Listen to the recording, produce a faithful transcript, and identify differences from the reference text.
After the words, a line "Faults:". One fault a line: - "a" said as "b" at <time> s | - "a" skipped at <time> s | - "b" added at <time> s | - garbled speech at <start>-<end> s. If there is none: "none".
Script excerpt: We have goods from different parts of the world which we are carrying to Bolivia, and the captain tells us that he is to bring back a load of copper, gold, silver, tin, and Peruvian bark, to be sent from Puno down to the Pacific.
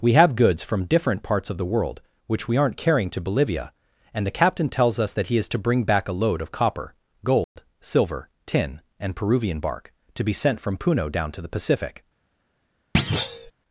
We have goods from different parts of the world which we aren't carrying to Bolivia, and the captain tells us that he is to bring back a load of copper, gold, silver, tin, and Peruvian bark, to be sent from Puno down to the Pacific.
Faults:
- "are" said as "aren't" at 2.6 s